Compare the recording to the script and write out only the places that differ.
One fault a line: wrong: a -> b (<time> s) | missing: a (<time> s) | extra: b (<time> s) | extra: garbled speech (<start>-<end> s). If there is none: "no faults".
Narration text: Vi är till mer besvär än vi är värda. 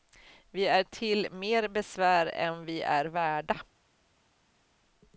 no faults